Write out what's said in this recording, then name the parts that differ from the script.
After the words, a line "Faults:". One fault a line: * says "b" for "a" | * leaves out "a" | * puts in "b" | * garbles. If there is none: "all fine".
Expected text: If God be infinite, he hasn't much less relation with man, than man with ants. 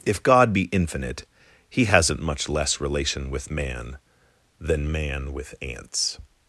If God be infinite, he hasn't much less relation with man, than man with ants.
Faults:
all fine